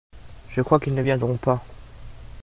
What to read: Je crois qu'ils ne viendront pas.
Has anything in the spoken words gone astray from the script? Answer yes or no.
no